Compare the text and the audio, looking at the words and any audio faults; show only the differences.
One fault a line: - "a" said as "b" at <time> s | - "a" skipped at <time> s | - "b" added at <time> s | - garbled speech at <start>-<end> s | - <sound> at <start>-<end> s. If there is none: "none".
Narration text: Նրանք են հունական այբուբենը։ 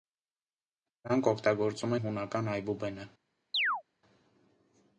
- "օգտագործում" added at 1.3 s
- chirp at 3.5-3.8 s